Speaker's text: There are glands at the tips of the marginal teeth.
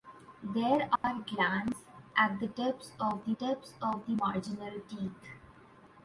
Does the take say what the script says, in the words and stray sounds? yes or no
no